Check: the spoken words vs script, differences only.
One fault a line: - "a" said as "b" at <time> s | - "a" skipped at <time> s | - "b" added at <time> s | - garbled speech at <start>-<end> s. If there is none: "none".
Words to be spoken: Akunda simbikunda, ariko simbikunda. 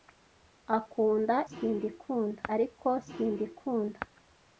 none